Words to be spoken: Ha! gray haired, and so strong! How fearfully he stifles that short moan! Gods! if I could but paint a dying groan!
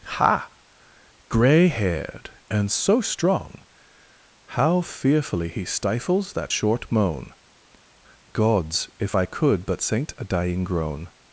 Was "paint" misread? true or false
true